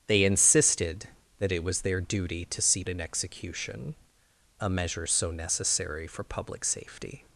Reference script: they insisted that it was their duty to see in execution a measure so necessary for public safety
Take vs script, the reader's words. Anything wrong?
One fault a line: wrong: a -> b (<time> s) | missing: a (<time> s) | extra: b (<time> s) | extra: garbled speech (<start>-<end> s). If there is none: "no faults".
no faults